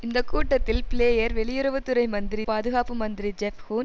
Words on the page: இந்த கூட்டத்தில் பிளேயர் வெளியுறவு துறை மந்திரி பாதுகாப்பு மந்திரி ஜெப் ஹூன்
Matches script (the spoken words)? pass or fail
pass